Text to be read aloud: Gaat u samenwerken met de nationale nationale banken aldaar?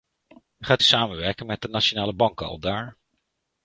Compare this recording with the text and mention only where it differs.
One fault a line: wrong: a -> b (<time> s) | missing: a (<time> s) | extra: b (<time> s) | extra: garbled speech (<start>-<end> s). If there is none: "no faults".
missing: nationale (2.1 s)